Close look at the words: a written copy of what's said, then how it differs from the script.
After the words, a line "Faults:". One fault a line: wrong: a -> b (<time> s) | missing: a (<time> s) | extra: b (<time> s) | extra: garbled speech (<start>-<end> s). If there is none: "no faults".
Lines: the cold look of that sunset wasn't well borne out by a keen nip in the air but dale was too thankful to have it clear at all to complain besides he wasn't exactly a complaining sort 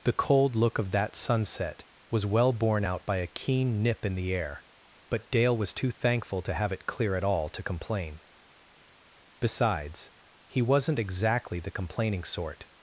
the cold look of that sunset was well borne out by a keen nip in the air but dale was too thankful to have it clear at all to complain besides he wasn't exactly the complaining sort
Faults:
wrong: wasn't -> was (2.1 s)
wrong: a -> the (11.6 s)